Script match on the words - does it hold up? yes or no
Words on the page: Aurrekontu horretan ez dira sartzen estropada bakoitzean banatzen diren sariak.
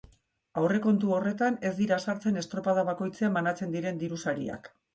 no